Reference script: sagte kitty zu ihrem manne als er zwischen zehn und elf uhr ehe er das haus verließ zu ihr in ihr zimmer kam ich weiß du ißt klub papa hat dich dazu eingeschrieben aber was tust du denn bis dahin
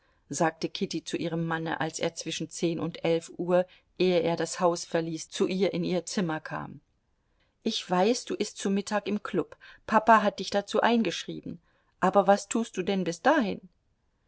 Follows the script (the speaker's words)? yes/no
no